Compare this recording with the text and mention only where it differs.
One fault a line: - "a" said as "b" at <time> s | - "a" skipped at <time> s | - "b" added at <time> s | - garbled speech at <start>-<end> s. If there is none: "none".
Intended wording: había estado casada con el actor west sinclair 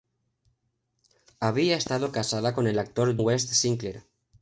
none